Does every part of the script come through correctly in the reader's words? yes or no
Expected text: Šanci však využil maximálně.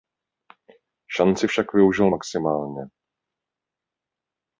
yes